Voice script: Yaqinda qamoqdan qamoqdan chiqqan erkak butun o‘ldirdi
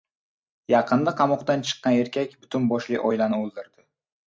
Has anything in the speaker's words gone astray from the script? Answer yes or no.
yes